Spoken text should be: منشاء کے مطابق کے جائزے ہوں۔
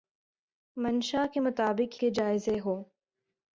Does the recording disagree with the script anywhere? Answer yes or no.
no